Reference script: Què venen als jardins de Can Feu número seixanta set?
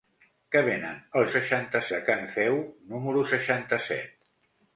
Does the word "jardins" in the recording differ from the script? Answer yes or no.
yes